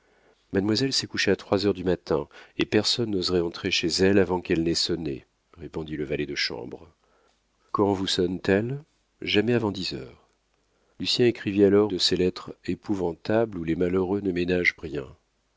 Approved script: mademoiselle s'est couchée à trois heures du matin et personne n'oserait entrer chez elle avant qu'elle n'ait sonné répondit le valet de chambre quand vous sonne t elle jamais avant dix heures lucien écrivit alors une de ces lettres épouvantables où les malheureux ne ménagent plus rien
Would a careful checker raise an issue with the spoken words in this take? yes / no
yes